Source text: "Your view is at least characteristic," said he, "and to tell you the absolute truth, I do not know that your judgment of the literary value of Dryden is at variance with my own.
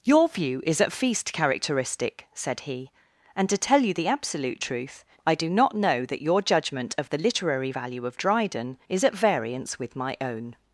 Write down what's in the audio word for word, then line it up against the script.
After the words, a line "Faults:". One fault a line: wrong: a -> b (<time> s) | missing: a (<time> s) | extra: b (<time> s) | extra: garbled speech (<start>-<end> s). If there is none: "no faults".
"Your view is at feast characteristic," said he, "and to tell you the absolute truth, I do not know that your judgment of the literary value of Dryden is at variance with my own.
Faults:
wrong: least -> feast (0.9 s)